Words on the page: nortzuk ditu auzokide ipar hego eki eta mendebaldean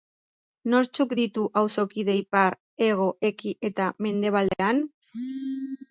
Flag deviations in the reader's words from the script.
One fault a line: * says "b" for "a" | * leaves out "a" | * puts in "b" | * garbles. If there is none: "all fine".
all fine